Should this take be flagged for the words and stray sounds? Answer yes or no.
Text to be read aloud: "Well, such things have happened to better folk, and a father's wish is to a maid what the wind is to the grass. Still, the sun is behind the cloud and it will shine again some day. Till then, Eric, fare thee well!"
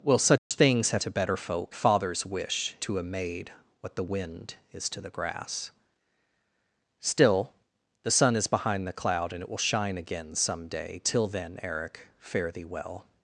yes